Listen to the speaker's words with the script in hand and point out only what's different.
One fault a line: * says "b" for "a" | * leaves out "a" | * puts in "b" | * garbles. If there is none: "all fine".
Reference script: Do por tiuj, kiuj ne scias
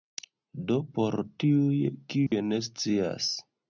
all fine